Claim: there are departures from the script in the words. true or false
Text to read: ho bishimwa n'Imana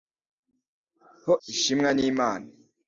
false